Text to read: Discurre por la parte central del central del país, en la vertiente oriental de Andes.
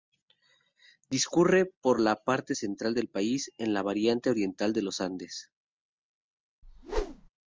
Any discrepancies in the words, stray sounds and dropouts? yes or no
yes